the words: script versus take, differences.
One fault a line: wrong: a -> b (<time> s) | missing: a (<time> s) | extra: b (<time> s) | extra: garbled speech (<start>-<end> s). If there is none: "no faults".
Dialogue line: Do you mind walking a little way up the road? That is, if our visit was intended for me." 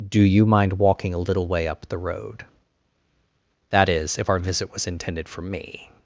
no faults